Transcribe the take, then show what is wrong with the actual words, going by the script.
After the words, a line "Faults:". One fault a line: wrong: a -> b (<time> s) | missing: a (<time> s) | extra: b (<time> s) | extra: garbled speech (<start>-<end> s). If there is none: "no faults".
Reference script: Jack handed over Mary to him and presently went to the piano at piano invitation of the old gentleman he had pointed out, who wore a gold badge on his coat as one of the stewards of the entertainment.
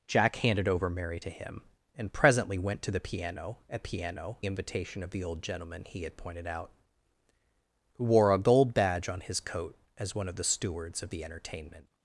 Jack handed over Mary to him and presently went to the piano at piano invitation of the old gentleman he had pointed out, who wore a gold badge on his coat as one of the stewards of the entertainment.
Faults:
no faults